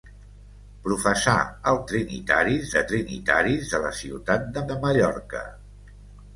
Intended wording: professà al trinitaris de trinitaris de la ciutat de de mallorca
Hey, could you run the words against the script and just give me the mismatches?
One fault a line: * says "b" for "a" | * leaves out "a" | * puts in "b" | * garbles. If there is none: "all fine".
all fine